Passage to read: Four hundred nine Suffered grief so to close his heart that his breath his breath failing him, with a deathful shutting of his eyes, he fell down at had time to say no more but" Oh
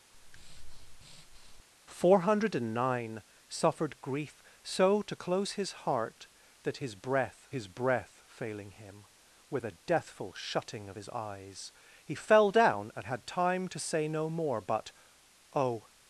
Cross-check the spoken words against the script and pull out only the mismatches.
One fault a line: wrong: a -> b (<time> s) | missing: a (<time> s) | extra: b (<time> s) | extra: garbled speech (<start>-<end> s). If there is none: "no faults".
no faults